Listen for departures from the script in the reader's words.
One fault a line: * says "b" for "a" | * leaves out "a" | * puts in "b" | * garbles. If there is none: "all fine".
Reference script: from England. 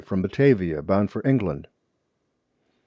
* puts in "Batavia bound for"